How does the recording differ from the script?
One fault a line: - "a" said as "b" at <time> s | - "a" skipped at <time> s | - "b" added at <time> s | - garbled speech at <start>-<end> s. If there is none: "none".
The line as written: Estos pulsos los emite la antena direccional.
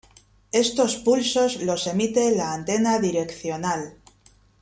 none